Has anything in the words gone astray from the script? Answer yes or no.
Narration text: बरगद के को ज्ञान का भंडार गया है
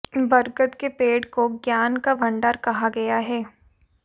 yes